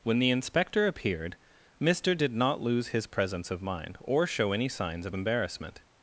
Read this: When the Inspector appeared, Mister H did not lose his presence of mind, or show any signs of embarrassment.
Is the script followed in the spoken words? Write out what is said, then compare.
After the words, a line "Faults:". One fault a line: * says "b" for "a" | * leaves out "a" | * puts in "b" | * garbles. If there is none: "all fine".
When the Inspector appeared, Mister did not lose his presence of mind, or show any signs of embarrassment.
Faults:
* leaves out "H"